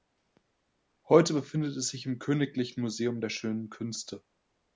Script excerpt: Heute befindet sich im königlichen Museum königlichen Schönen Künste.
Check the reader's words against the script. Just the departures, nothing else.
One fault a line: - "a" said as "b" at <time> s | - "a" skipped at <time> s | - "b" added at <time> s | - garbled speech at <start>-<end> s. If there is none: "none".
- "es" added at 1.8 s
- "königlichen" said as "der" at 3.2 s